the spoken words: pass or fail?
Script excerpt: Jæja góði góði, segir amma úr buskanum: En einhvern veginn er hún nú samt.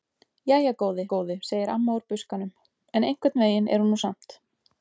pass